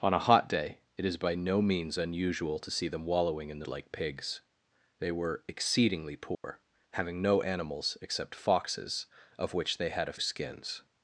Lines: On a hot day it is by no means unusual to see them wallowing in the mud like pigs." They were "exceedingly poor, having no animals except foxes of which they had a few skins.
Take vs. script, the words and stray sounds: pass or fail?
fail